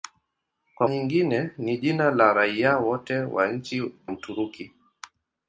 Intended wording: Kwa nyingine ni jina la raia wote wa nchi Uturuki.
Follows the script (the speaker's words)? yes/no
yes